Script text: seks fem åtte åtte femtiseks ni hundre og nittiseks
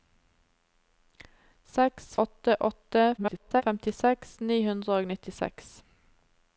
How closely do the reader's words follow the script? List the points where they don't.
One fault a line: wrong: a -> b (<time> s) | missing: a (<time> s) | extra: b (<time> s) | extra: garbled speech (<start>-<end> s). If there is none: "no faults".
missing: fem (2.1 s)
extra: garbled speech (3.2-3.6 s)